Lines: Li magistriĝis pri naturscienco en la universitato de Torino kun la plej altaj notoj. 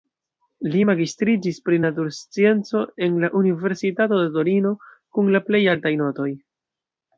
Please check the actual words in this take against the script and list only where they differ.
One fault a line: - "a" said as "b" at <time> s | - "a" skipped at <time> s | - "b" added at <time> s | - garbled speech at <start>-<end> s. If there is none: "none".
none